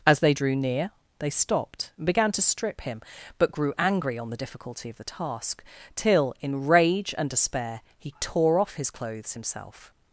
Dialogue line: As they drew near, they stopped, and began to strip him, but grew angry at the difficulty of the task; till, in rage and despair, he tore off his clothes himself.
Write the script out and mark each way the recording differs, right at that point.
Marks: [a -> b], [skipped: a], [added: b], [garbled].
As they drew near, they stopped, and began to strip him, but grew angry [at -> on] the difficulty of the task; till, in rage and despair, he tore off his clothes himself.